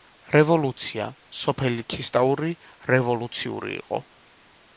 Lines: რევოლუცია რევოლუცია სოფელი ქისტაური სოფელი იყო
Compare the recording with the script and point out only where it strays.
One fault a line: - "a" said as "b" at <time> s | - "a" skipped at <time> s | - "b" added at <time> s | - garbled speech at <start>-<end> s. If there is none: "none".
- "რევოლუცია" skipped at 1.1 s
- "სოფელი" said as "რევოლუციური" at 2.9 s